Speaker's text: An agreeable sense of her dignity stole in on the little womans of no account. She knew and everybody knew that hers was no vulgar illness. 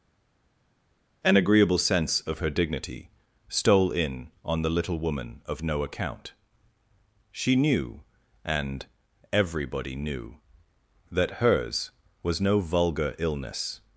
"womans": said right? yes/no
no